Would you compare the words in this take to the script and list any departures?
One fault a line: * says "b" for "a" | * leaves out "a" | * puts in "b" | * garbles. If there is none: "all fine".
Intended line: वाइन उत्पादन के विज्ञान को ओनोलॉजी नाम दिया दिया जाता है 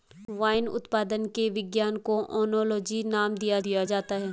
all fine